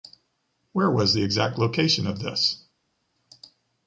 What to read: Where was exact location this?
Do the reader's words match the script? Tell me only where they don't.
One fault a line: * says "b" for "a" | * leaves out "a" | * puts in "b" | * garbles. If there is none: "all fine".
* puts in "the"
* puts in "of"